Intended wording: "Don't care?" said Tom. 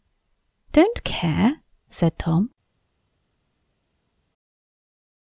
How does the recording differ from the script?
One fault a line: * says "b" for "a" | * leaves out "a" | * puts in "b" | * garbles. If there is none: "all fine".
all fine